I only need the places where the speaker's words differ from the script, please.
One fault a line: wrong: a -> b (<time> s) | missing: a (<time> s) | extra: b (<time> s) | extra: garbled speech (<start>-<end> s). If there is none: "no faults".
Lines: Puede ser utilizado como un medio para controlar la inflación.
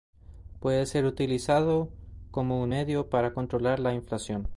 no faults